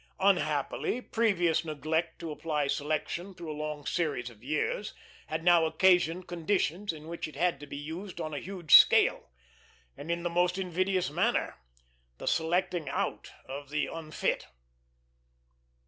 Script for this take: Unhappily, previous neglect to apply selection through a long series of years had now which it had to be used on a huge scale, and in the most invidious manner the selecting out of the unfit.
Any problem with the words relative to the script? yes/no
yes